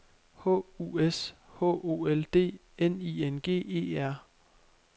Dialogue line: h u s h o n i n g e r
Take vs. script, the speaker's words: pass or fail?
fail